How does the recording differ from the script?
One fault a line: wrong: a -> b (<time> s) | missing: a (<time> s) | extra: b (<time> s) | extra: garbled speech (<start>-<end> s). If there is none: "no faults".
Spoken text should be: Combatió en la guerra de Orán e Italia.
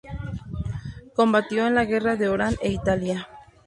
no faults